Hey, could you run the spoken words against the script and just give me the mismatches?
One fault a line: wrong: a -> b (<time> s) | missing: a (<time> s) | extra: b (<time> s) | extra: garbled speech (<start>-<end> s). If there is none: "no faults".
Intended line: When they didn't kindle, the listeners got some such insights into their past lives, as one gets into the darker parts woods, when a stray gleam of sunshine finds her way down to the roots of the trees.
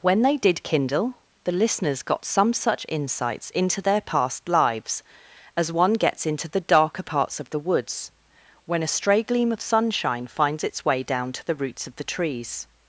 wrong: didn't -> did (0.3 s)
extra: of the (7.4 s)
wrong: her -> its (10.6 s)